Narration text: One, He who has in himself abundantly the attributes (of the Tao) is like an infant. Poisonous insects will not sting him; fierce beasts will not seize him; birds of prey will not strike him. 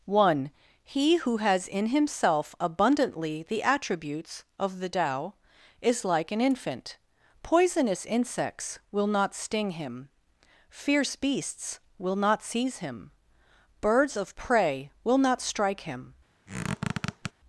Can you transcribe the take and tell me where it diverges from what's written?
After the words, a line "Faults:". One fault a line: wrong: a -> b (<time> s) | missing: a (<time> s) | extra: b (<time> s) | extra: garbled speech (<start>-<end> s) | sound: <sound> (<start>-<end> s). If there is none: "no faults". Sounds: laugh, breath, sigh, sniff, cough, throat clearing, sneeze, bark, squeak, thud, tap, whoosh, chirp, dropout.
One, He who has in himself abundantly the attributes (of the Tao) is like an infant. Poisonous insects will not sting him; fierce beasts will not seize him; birds of prey will not strike him.
Faults:
sound: squeak (16.5-17.3 s)